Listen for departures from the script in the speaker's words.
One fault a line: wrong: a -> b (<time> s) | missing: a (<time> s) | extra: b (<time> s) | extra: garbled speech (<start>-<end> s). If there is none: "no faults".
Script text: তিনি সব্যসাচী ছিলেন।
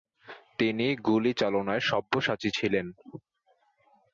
extra: গুলিচালনায় (1.1 s)